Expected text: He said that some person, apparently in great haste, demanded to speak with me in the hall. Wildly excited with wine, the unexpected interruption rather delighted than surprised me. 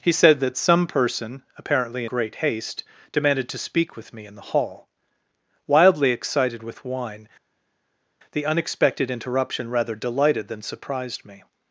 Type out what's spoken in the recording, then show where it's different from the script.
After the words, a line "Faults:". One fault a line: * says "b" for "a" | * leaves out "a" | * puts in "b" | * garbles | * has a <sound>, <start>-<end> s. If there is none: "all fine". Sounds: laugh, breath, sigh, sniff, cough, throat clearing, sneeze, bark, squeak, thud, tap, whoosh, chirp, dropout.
He said that some person, apparently great haste, demanded to speak with me in the hall. Wildly excited with wine, the unexpected interruption rather delighted than surprised me.
Faults:
* leaves out "in"